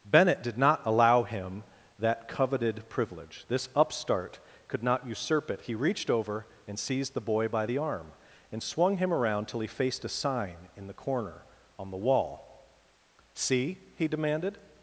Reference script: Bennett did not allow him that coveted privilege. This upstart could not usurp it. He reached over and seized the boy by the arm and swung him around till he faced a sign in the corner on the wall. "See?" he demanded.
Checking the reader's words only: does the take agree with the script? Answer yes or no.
yes